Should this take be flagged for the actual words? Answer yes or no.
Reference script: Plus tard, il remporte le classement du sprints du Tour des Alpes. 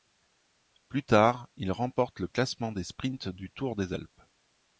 yes